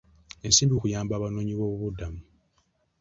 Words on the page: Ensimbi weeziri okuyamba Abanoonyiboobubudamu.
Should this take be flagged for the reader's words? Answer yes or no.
yes